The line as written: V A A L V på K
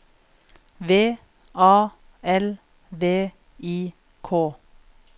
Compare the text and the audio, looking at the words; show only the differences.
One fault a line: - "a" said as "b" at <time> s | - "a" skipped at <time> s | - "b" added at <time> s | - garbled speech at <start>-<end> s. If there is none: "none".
- "A" skipped at 1.9 s
- "på" said as "I" at 3.6 s